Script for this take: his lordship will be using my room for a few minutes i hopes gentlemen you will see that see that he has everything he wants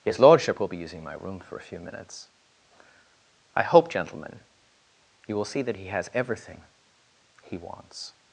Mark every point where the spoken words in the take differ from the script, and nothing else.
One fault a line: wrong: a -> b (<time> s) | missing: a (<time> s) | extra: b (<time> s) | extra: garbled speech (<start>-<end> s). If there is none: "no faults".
wrong: hopes -> hope (3.6 s)
missing: see that (5.8 s)